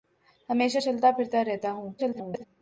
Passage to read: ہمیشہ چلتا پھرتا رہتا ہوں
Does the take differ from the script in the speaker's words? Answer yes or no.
yes